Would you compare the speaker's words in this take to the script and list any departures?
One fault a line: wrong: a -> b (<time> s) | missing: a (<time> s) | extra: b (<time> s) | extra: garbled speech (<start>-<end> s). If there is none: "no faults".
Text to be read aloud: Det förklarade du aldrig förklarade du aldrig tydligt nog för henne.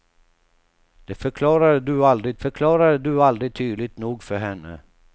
no faults